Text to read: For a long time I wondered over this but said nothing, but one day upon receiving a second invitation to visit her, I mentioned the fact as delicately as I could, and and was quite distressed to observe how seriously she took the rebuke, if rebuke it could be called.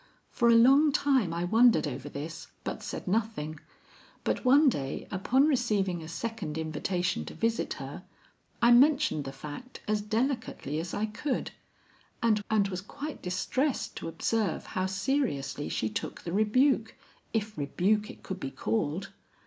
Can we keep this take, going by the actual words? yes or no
yes